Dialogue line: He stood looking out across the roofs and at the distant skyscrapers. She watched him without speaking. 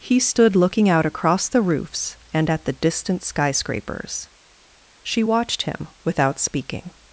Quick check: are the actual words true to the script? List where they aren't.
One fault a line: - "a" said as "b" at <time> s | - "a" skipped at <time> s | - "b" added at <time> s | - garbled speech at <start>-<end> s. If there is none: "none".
none